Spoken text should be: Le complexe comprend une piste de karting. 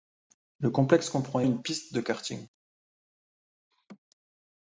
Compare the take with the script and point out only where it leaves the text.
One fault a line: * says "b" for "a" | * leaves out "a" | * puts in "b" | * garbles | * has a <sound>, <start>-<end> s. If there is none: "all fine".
* has a laugh, 3.7-4.0 s